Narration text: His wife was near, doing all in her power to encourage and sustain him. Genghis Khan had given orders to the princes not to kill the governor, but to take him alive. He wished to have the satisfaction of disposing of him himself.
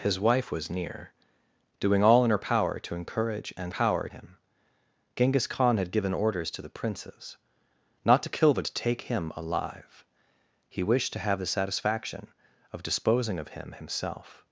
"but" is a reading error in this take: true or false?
true